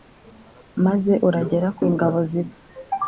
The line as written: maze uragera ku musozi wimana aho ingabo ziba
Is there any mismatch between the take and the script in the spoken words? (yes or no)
yes